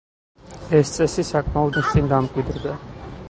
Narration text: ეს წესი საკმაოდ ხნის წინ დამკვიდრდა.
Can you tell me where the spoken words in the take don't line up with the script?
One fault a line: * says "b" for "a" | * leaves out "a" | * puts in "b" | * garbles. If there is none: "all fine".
all fine